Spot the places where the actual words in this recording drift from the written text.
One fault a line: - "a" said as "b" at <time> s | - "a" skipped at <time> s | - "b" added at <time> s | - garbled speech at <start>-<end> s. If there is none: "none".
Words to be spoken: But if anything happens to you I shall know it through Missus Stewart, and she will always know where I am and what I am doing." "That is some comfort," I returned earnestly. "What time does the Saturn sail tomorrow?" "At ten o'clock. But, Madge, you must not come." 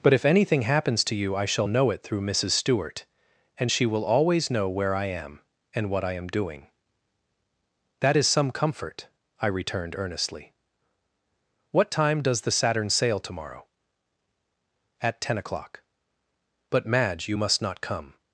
none